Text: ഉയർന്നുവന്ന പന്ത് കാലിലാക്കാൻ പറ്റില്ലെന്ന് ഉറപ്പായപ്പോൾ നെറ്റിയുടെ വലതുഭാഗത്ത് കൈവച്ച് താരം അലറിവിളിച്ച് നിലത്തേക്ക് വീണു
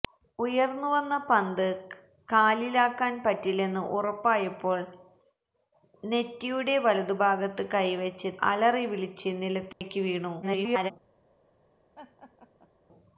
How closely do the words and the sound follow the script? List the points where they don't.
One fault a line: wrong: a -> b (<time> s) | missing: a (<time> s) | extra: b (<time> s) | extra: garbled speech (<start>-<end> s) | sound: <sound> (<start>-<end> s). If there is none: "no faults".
missing: താരം (8.3 s)
sound: dropout (9.7-9.8 s)
extra: garbled speech (10.4-10.9 s)
sound: laugh (12.0-12.7 s)